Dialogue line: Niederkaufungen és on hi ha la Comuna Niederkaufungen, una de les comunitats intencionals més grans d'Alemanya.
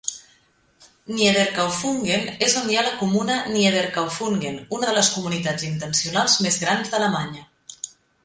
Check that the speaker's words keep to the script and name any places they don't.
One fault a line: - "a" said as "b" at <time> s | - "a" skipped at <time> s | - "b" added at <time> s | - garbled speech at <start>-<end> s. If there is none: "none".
none